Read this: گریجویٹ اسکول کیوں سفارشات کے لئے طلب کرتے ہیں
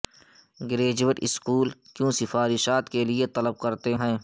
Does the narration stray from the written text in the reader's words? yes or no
no